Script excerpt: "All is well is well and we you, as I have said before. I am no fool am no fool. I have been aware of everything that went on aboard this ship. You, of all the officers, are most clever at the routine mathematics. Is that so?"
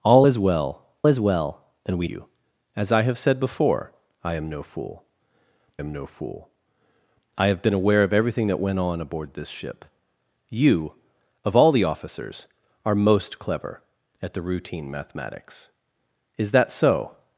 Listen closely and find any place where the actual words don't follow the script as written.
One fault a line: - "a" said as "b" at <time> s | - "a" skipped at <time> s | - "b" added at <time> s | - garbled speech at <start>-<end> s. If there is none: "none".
none